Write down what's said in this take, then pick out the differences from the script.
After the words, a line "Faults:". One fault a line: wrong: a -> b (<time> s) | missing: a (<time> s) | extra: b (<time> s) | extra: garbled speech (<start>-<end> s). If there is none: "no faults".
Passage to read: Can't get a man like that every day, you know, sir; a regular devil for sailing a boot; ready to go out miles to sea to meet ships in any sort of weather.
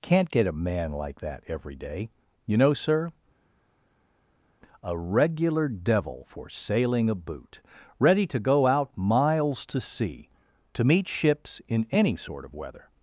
Can't get a man like that every day, you know, sir; a regular devil for sailing a boot; ready to go out miles to sea to meet ships in any sort of weather.
Faults:
no faults